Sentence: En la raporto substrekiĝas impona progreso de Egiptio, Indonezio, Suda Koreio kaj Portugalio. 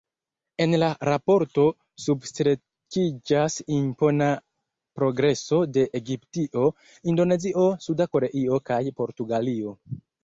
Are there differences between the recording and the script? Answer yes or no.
no